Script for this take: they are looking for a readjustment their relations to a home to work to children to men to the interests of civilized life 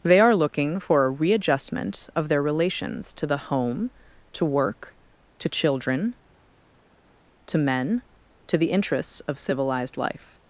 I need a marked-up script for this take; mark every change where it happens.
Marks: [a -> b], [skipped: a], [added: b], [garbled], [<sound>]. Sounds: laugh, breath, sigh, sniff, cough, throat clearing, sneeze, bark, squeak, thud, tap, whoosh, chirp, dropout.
they are looking for a readjustment [added: of] their relations to [a -> the] home to work to children to men to the interests of civilized life